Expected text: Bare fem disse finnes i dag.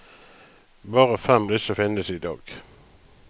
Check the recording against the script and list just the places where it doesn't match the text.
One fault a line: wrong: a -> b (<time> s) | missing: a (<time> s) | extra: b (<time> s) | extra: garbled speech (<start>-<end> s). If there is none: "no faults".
no faults